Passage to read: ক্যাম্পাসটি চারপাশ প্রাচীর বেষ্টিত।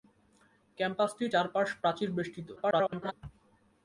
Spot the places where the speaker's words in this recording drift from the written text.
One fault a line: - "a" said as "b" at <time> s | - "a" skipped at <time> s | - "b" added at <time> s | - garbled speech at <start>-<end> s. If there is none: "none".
- garbled speech at 2.6-3.1 s